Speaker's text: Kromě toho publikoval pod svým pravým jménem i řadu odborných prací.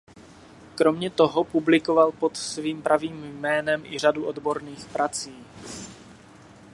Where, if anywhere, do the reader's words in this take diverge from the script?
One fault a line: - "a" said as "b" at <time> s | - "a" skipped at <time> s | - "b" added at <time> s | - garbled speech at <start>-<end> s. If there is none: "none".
none